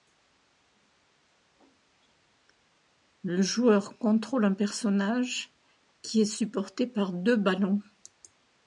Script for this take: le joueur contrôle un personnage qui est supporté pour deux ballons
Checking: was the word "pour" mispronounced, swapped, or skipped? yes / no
yes